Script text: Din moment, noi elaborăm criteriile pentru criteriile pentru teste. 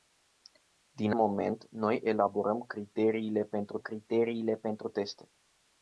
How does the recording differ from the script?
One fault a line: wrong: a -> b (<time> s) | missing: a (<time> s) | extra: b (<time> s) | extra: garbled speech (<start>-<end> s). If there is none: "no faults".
no faults